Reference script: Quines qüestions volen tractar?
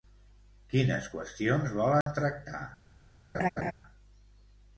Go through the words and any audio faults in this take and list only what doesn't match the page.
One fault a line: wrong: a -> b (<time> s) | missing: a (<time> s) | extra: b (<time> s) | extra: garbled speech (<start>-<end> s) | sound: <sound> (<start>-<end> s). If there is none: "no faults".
sound: dropout (2.0-2.1 s)
sound: laugh (3.3-3.7 s)